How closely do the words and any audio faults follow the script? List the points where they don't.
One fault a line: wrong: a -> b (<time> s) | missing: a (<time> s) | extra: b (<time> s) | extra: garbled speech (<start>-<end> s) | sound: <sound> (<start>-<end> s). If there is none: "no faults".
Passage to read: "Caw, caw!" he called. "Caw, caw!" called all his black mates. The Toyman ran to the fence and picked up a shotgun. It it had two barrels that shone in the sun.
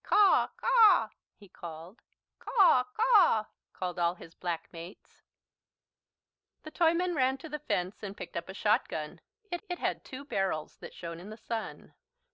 no faults